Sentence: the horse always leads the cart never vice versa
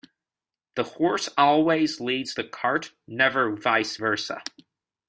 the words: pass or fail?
pass